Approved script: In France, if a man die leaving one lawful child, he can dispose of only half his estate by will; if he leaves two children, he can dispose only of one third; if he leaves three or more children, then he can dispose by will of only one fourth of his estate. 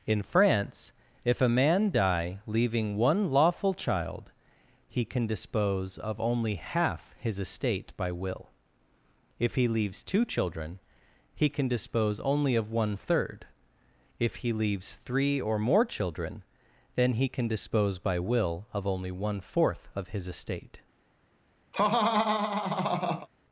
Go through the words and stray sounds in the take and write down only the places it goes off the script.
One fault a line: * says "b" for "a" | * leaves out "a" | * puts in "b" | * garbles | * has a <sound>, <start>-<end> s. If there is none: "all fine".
* has a laugh, 21.7-23.3 s